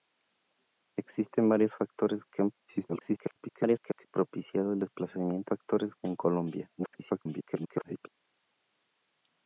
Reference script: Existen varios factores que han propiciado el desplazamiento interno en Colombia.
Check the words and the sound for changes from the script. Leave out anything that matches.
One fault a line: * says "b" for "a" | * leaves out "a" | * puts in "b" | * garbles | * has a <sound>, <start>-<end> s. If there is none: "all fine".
* garbles
* says "factores" for "interno"
* garbles